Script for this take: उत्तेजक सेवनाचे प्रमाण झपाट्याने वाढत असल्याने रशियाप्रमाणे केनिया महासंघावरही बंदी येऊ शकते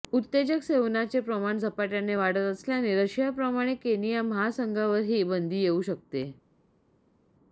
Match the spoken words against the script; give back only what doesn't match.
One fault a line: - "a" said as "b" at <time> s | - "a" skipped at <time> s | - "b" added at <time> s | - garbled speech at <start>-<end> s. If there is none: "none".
none